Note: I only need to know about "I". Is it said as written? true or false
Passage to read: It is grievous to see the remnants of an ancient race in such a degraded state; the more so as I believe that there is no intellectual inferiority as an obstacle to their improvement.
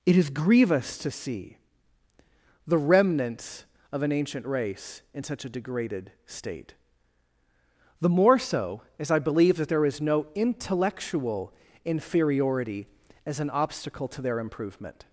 true